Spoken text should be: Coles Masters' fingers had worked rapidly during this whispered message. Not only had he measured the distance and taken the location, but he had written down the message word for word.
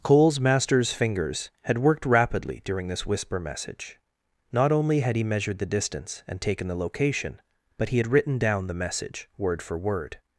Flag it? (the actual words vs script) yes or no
yes